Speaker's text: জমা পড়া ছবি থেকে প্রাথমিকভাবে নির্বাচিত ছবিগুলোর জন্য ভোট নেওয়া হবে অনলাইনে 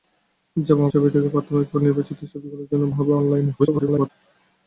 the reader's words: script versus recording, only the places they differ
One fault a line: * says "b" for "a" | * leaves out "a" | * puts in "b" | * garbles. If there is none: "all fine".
* leaves out "পড়া"
* leaves out "ভোট নেওয়া"
* garbles